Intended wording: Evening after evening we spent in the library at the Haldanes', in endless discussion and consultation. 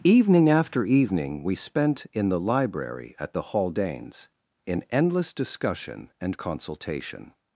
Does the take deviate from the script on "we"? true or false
false